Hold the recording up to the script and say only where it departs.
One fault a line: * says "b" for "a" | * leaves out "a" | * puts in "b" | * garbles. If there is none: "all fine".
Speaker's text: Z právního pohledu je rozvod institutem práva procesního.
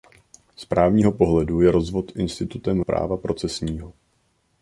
all fine